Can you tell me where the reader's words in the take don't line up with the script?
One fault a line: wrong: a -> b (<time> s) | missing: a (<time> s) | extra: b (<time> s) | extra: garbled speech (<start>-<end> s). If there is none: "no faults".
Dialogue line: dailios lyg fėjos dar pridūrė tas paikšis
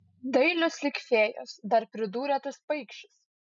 no faults